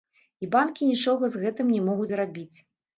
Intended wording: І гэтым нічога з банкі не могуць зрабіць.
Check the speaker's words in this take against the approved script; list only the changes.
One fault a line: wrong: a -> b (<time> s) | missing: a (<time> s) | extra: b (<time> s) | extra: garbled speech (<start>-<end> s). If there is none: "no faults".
wrong: гэтым -> банкі (0.5 s)
wrong: банкі -> гэтым (1.4 s)